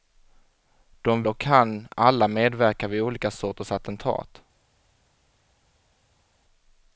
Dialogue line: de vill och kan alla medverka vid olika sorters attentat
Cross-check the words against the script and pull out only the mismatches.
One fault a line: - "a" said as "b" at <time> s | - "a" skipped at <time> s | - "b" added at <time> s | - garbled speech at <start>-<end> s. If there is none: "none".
- "vill" skipped at 1.2 s